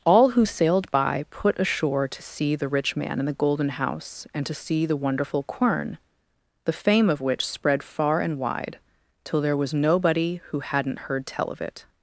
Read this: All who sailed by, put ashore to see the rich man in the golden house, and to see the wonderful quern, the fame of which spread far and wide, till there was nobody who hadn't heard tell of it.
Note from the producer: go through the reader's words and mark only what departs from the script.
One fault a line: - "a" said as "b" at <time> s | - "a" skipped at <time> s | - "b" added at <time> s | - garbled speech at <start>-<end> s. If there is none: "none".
none